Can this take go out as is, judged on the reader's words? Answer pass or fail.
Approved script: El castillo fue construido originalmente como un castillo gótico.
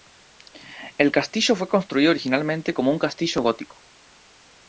pass